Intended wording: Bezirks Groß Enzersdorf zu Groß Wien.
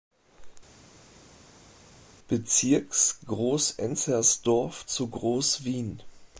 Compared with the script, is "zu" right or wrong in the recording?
right